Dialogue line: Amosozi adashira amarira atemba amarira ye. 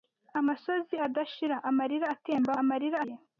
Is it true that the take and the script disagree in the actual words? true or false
false